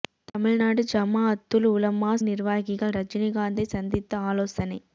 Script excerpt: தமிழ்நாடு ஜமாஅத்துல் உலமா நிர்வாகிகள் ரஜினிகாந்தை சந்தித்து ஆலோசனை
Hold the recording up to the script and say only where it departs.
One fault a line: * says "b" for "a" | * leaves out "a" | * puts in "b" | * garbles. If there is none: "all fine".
all fine